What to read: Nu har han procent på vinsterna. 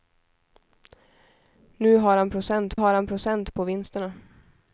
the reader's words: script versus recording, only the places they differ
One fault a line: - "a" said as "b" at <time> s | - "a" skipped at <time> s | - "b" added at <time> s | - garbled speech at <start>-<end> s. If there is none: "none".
- "har han procent" added at 2.7 s